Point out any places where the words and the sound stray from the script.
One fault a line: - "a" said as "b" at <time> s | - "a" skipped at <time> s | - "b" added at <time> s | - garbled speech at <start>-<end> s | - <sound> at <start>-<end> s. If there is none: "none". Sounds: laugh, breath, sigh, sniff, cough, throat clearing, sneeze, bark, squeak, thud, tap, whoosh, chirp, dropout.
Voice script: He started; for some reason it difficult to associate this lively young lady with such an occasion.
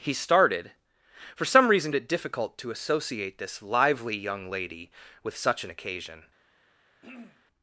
- throat clearing at 7.0-7.4 s